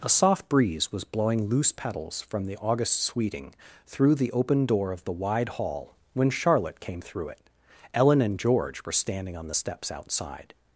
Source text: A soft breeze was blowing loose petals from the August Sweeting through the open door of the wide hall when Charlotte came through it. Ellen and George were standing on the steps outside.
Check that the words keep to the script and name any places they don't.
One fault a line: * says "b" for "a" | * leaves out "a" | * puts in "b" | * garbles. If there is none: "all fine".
all fine